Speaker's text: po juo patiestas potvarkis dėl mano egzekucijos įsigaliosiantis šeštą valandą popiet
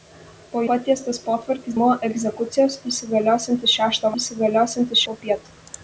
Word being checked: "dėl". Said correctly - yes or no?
no